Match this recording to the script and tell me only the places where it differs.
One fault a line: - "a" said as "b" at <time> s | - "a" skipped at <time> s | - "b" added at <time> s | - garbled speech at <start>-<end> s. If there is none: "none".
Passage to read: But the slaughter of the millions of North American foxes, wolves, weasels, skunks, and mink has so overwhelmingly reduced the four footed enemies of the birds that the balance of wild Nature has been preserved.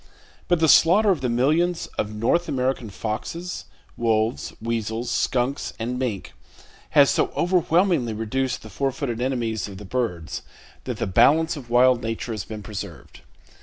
none